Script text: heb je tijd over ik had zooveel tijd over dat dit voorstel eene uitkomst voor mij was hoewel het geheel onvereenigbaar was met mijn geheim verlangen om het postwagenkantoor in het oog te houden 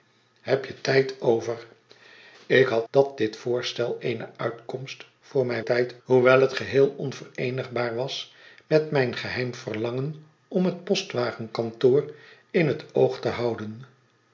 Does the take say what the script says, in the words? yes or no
no